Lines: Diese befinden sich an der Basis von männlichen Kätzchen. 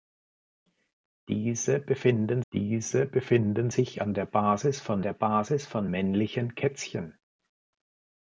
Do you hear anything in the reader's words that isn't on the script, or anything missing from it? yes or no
yes